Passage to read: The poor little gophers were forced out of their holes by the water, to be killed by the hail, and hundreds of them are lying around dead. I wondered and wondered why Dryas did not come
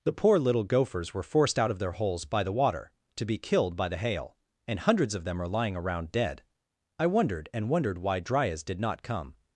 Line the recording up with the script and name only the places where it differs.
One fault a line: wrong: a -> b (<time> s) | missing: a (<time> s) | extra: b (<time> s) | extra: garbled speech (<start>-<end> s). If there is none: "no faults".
no faults